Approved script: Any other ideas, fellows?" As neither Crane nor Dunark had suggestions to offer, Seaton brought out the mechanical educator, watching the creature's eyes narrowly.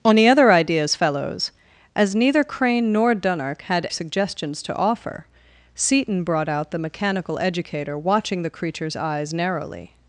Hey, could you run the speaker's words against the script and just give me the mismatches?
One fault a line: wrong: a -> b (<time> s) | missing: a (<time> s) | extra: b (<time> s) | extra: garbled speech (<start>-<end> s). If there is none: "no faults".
no faults